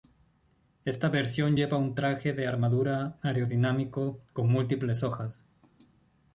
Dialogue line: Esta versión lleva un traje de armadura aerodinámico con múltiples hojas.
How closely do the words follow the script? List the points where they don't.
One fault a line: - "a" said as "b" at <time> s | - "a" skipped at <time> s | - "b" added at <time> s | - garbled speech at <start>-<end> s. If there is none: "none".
none